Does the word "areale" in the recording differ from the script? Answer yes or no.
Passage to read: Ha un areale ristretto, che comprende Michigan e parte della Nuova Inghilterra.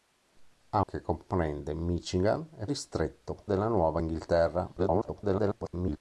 yes